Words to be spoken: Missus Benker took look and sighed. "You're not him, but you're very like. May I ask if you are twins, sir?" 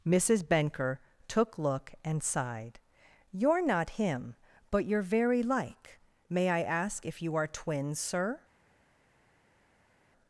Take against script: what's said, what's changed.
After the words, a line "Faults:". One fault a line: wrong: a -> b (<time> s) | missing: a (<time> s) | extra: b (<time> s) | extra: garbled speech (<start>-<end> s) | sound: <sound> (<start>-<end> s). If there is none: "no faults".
Missus Benker took look and sighed. "You're not him, but you're very like. May I ask if you are twins, sir?"
Faults:
no faults